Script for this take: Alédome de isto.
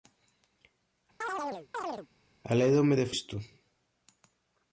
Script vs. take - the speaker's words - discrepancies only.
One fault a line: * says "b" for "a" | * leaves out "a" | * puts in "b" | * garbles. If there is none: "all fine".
all fine